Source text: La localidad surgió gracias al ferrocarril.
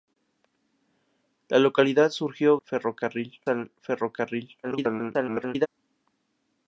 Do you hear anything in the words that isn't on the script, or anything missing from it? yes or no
yes